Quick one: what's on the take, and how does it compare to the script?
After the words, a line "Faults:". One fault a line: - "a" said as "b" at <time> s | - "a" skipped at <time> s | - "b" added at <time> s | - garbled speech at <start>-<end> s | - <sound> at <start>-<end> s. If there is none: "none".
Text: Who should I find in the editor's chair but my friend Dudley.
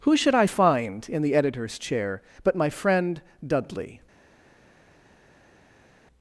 Who should I find in the editor's chair but my friend Dudley.
Faults:
none